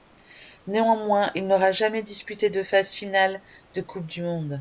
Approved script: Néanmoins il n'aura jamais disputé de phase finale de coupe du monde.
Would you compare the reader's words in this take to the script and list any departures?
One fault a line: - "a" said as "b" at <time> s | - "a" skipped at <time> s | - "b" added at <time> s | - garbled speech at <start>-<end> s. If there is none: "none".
none